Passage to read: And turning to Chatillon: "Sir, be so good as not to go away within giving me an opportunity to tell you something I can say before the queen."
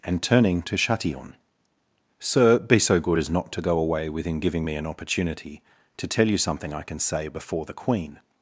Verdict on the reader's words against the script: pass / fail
pass